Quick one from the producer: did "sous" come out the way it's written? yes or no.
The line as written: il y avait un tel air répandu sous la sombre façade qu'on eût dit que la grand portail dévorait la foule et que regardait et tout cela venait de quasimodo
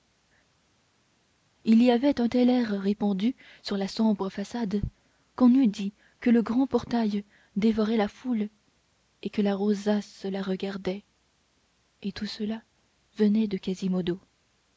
no